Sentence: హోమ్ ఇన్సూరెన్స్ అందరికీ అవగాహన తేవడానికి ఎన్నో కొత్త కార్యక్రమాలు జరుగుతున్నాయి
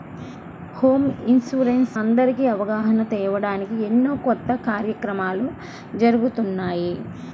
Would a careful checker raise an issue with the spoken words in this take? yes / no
no